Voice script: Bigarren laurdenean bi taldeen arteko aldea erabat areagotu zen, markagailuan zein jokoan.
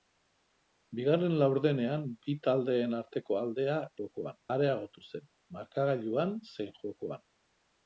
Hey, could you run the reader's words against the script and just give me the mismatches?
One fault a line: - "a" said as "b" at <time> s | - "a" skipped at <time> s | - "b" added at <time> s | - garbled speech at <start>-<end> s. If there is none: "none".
- "erabat" said as "jokoan" at 4.0 s